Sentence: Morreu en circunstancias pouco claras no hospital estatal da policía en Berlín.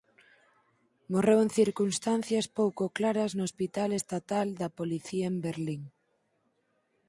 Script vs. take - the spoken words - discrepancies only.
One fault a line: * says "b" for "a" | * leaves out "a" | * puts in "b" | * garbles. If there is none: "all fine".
all fine